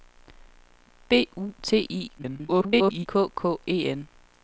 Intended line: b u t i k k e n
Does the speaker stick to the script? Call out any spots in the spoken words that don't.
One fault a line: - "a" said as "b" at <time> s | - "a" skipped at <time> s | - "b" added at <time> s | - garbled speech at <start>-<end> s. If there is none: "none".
- garbled speech at 2.2-3.1 s